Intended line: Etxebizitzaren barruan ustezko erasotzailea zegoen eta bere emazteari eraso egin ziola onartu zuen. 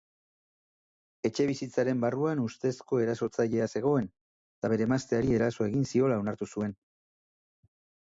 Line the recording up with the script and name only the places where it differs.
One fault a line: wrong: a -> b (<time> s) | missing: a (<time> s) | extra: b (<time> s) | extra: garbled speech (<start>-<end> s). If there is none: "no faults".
no faults